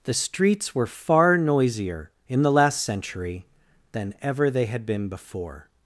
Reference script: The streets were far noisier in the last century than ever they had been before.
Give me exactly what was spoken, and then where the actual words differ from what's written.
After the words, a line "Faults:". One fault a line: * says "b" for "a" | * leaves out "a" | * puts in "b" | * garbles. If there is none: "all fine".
The streets were far noisier in the last century than ever they had been before.
Faults:
all fine